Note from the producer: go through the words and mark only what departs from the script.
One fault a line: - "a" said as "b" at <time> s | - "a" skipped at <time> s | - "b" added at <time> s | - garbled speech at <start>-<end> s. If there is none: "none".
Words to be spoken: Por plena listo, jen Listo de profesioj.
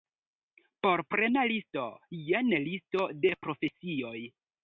none